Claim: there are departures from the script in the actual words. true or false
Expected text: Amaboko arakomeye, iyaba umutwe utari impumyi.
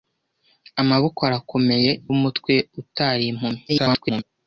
true